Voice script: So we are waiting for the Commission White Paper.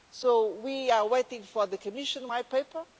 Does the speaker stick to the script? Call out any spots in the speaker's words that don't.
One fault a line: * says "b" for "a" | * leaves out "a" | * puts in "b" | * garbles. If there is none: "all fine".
all fine